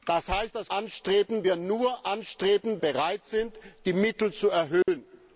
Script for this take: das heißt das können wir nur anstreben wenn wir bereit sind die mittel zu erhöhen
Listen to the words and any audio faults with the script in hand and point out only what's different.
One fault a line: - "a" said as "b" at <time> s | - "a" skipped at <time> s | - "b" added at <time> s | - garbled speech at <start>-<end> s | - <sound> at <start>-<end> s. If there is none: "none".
- "können" said as "anstreben" at 0.7 s
- "wenn wir" skipped at 2.8 s
- dropout at 4.8-4.9 s